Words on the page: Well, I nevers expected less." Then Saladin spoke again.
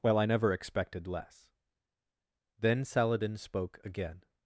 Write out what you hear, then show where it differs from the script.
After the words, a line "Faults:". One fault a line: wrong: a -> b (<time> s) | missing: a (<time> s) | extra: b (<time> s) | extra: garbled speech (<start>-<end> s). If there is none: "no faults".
Well, I never expected less." Then Saladin spoke again.
Faults:
wrong: nevers -> never (0.2 s)